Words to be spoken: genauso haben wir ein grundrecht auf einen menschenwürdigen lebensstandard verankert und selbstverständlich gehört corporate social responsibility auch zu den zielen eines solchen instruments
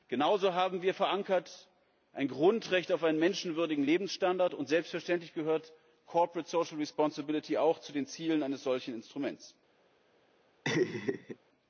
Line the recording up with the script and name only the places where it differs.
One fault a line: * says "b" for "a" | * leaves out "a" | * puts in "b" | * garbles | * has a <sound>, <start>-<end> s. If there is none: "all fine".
* has a laugh, 10.6-11.4 s